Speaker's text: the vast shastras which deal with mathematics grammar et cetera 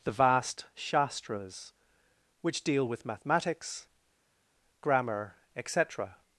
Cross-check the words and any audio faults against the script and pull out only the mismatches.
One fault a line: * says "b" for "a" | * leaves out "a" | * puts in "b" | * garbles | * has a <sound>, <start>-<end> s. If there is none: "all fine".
all fine